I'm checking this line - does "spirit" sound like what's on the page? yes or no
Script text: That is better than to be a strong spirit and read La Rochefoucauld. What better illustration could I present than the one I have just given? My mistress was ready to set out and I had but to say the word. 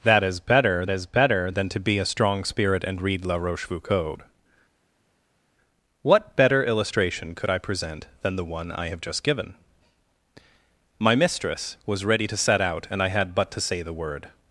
yes